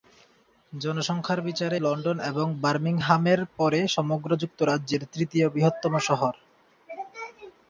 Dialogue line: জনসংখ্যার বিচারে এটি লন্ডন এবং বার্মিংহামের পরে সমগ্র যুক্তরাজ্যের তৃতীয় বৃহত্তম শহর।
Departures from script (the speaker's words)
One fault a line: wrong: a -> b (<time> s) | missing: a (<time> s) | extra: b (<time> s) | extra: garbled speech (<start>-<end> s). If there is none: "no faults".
missing: এটি (1.8 s)